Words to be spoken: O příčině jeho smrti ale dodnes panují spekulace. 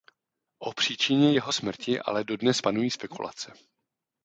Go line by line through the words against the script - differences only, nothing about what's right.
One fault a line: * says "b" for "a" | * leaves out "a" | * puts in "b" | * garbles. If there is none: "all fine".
all fine